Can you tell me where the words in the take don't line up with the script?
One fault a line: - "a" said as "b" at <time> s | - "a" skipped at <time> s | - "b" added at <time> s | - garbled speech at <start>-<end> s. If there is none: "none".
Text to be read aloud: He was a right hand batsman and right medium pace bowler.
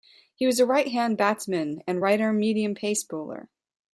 - "arm" added at 2.2 s